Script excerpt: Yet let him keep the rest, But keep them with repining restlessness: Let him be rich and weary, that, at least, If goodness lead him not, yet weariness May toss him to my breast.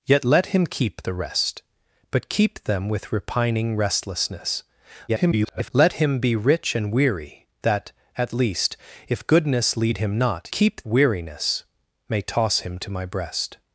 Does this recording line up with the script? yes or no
no